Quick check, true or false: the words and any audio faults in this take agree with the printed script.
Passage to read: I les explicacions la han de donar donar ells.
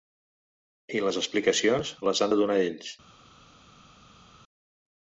false